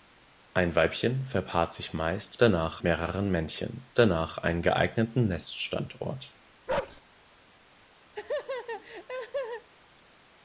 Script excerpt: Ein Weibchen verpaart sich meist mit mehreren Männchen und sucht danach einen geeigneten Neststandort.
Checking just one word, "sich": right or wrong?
right